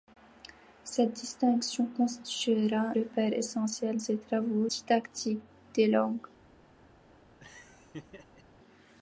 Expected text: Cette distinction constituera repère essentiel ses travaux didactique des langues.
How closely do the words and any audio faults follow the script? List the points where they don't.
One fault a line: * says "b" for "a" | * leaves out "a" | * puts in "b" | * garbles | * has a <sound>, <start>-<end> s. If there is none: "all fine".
* has a laugh, 7.4-8.4 s